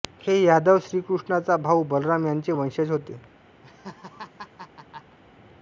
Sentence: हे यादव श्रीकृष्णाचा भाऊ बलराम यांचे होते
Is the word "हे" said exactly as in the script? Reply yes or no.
yes